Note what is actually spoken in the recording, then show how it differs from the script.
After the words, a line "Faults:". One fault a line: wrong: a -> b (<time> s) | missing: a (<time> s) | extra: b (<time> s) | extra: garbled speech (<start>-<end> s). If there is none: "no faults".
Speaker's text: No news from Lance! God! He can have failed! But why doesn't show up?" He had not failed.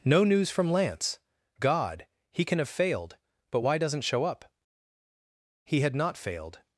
No news from Lance! God! He can have failed! But why doesn't show up?" He had not failed.
Faults:
no faults